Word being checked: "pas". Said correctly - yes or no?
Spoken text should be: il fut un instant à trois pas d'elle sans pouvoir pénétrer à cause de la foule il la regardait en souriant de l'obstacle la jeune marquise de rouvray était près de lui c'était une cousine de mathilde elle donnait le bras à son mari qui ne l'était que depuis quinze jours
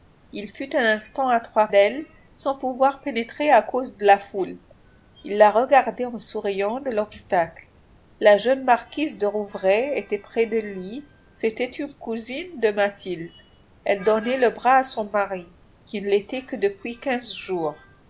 no